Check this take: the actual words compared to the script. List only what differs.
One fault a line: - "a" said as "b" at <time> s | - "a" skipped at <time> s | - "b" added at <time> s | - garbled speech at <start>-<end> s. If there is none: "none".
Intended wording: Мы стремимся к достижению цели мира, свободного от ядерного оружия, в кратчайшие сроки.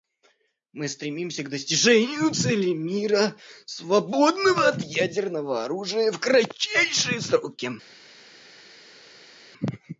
none